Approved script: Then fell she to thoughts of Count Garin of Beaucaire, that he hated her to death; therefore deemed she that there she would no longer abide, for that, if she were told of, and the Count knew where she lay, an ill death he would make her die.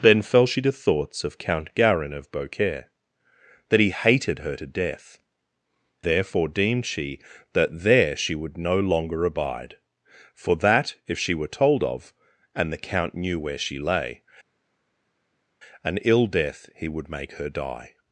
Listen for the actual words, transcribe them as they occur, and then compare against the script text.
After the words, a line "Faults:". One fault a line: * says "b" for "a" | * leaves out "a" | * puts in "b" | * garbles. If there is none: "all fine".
Then fell she to thoughts of Count Garin of Beaucaire, that he hated her to death; therefore deemed she that there she would no longer abide, for that, if she were told of, and the Count knew where she lay, an ill death he would make her die.
Faults:
all fine